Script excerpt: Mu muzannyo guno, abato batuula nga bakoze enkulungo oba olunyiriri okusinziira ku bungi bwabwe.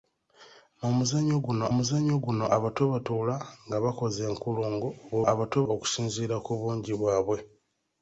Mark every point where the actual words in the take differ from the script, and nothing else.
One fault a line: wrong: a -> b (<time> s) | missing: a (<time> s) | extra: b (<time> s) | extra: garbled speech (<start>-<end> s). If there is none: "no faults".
extra: muzannyo guno (1.8 s)
wrong: olunyiriri -> abato (5.3 s)